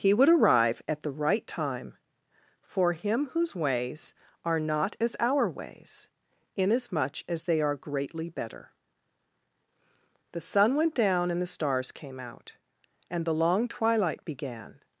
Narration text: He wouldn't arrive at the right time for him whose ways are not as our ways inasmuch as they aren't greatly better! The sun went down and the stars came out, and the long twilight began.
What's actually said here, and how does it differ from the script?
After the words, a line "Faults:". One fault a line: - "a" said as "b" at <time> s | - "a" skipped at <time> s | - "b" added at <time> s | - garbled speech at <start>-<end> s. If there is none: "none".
He would arrive at the right time for him whose ways are not as our ways inasmuch as they are greatly better! The sun went down and the stars came out, and the long twilight began.
Faults:
- "wouldn't" said as "would" at 0.1 s
- "aren't" said as "are" at 7.6 s